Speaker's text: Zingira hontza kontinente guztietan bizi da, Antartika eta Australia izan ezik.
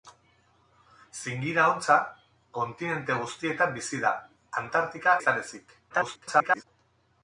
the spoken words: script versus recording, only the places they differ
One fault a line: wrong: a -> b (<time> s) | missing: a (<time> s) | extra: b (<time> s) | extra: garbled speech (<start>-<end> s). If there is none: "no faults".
missing: eta Australia (5.2 s)
extra: garbled speech (5.9-6.6 s)